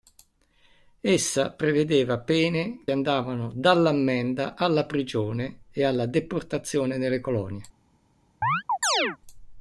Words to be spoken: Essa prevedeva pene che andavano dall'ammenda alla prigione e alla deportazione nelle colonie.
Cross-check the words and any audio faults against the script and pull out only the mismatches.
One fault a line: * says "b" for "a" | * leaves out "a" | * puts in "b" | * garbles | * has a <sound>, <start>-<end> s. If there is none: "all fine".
* leaves out "che"
* has a chirp, 8.4-9.2 s